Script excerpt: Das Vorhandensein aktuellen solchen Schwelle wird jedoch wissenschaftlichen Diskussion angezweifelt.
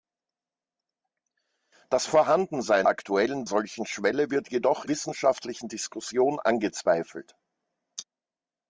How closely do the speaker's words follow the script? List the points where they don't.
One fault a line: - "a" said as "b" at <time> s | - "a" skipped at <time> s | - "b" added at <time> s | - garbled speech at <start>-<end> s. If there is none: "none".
none